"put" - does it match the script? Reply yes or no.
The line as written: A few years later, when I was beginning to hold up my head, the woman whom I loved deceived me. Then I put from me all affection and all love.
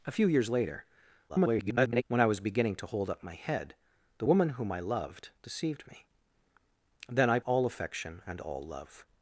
no